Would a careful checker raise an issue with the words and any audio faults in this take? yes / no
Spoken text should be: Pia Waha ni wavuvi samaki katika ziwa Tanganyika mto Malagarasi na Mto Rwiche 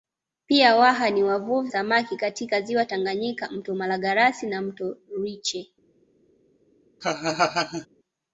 yes